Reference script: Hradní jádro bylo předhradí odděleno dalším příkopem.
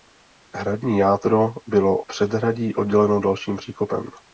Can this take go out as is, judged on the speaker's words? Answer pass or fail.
pass